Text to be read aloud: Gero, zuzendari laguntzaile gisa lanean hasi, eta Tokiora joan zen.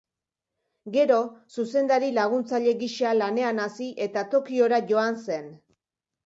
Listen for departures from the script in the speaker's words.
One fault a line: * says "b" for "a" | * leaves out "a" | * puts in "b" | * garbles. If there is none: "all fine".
all fine